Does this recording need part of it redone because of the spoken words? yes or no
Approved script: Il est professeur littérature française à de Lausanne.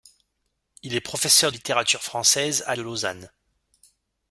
no